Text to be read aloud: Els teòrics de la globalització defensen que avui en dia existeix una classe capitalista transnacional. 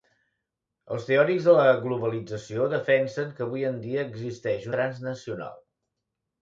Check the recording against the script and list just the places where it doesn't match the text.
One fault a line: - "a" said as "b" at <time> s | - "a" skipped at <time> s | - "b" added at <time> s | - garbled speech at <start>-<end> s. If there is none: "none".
- "una classe capitalista" skipped at 4.7 s